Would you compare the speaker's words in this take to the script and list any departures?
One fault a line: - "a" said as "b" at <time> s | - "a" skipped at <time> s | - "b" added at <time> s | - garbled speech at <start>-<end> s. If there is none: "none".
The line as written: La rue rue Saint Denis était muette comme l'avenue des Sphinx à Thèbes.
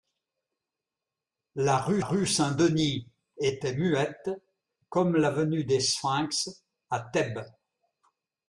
none